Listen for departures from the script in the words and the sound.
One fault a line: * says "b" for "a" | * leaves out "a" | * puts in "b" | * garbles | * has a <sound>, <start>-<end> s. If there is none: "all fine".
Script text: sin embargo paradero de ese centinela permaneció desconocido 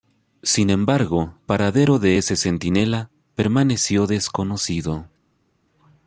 all fine